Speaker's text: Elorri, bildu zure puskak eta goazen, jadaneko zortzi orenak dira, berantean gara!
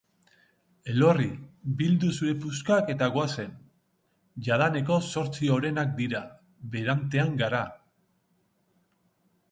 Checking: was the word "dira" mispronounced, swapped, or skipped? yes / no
no